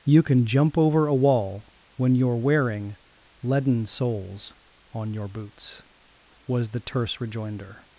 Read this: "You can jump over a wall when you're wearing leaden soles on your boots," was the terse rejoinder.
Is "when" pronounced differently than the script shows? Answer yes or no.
no